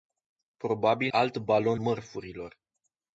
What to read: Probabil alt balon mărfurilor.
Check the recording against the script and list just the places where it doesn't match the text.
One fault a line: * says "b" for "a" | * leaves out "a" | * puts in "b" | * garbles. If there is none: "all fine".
all fine